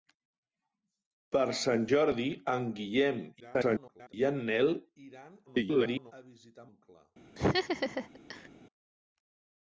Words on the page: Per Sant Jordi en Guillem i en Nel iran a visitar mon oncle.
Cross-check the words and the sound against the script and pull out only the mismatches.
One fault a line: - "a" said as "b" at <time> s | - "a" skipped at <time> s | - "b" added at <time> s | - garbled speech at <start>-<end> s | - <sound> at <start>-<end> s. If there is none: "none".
- garbled speech at 3.4-4.1 s
- garbled speech at 5.5-6.1 s
- "mon" skipped at 6.7 s
- laugh at 7.4-8.5 s